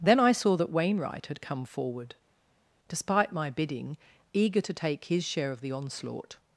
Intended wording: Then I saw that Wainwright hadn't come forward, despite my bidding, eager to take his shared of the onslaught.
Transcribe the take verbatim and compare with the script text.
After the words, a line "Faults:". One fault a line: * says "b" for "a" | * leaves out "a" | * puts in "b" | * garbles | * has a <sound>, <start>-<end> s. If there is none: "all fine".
Then I saw that Wainwright had come forward, despite my bidding, eager to take his share of the onslaught.
Faults:
* says "had" for "hadn't"
* says "share" for "shared"